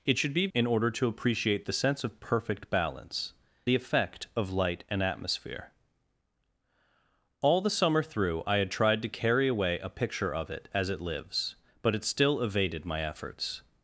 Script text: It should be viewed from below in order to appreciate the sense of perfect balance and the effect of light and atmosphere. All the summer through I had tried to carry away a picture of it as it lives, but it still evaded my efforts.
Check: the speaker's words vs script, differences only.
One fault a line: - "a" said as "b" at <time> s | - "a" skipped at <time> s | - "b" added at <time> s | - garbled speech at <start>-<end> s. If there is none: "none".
- "viewed from below" skipped at 0.5 s
- "and" skipped at 3.3 s